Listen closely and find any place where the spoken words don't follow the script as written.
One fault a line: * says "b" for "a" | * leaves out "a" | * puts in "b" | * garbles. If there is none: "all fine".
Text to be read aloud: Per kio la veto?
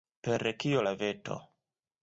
all fine